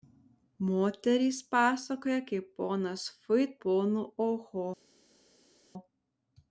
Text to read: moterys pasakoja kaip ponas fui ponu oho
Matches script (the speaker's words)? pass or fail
pass